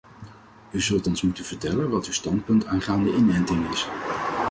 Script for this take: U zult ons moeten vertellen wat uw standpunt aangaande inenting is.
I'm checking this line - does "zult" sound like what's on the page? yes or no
yes